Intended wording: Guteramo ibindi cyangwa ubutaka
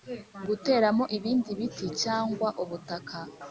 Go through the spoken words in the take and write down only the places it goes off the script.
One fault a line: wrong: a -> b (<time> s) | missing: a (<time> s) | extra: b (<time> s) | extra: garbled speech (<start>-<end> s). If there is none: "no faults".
extra: biti (1.6 s)